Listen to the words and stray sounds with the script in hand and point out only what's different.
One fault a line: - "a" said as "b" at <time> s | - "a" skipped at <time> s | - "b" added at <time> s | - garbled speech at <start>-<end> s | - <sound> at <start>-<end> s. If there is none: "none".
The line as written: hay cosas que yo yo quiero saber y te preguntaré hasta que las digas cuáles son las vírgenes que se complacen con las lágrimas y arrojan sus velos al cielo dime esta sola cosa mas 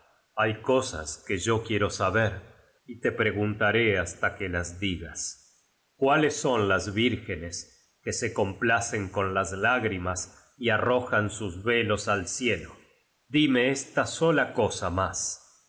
- "yo" skipped at 1.6 s